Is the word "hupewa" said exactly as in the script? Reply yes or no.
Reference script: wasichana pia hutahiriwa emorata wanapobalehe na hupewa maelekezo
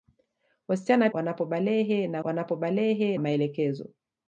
no